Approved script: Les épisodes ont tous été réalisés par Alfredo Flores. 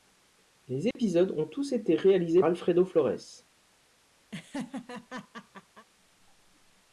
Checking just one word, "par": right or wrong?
wrong